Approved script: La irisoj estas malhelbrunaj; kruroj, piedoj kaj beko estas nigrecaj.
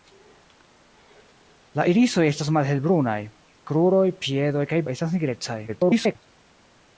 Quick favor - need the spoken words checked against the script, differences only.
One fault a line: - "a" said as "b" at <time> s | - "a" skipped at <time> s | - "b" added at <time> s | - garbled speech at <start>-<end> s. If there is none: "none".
- "beko" skipped at 4.8 s
- garbled speech at 5.7-6.2 s